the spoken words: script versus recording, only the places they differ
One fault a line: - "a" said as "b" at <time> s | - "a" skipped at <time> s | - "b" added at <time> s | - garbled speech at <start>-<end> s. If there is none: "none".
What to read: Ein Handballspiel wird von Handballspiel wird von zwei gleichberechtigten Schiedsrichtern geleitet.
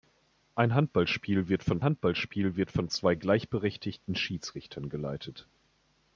none